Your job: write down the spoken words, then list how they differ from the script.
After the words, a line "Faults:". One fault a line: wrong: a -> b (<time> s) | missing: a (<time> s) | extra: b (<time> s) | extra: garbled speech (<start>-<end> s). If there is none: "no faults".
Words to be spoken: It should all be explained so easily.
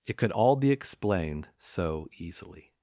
It could all be explained so easily.
Faults:
wrong: should -> could (0.1 s)